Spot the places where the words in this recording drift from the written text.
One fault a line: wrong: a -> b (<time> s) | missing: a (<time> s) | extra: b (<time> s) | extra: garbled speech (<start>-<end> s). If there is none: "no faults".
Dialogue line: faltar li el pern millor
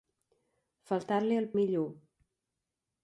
missing: pern (1.5 s)